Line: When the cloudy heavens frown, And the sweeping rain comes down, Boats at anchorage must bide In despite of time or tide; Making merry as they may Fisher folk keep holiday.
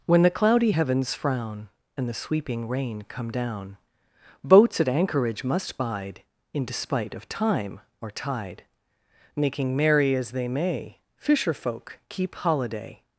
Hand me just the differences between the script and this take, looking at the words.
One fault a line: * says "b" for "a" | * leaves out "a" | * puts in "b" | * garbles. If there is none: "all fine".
* says "come" for "comes"